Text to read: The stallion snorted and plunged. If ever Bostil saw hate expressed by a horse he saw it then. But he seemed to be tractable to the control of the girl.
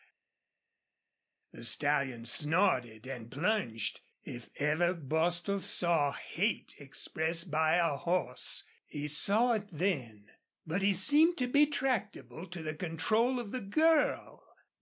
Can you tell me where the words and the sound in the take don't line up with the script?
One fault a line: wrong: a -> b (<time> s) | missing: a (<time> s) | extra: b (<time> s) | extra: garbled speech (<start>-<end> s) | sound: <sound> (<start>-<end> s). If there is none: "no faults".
no faults